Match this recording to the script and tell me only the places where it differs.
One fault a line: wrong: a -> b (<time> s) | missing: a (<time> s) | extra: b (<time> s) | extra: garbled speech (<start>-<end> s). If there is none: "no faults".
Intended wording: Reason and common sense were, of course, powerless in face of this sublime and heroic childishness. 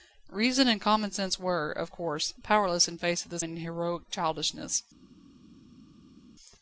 missing: sublime (3.4 s)